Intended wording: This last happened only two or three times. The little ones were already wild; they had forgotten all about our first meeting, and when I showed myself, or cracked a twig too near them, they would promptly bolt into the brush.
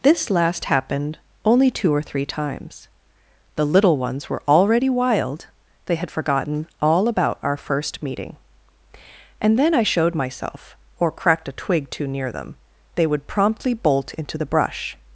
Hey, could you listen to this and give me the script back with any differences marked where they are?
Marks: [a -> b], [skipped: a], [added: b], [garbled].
This last happened only two or three times. The little ones were already wild; they had forgotten all about our first meeting, and [when -> then] I showed myself, or cracked a twig too near them, they would promptly bolt into the brush.